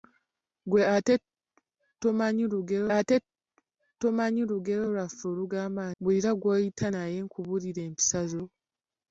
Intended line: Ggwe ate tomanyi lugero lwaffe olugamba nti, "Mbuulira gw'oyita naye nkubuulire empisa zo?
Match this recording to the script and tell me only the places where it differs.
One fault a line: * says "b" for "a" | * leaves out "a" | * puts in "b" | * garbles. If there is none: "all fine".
* puts in "ate tomanyi lugero"
* leaves out "nti"